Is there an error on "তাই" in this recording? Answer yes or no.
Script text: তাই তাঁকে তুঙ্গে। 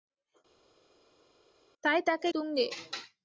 no